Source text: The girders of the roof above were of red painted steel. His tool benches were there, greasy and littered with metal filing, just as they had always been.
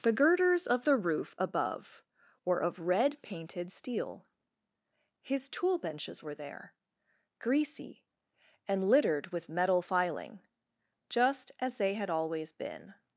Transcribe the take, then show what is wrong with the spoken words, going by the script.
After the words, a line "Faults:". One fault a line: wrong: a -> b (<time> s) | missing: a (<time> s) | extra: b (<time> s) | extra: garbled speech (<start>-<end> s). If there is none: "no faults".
The girders of the roof above were of red painted steel. His tool benches were there, greasy and littered with metal filing, just as they had always been.
Faults:
no faults